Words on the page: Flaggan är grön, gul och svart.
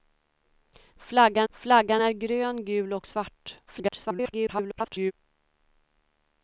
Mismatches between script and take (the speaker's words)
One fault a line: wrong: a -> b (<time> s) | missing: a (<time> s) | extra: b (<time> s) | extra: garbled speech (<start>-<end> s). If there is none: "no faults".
extra: flaggan (1.5 s)
extra: garbled speech (3.7-5.1 s)